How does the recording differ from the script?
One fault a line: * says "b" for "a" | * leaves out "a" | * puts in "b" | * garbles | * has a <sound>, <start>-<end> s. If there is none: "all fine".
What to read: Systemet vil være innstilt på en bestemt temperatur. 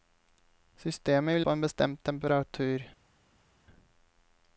* leaves out "være innstilt"